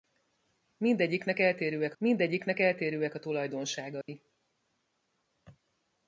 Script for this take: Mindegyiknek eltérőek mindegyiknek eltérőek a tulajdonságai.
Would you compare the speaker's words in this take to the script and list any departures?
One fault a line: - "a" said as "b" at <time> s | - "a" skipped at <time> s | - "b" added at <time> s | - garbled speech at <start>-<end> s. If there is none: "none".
none